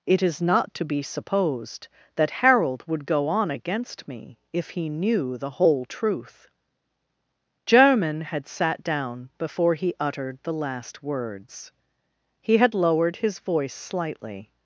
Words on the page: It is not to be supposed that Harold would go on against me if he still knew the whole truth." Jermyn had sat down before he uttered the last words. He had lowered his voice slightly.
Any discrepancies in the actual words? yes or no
yes